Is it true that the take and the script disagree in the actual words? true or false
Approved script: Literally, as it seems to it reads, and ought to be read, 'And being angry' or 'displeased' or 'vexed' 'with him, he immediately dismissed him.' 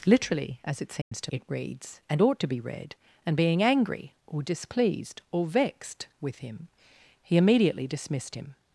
false